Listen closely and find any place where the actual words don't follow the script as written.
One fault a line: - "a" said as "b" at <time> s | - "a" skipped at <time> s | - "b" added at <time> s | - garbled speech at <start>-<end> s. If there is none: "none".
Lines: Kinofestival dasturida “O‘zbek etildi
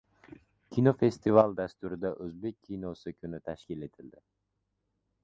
- "kinosi kuni tashkil" added at 2.7 s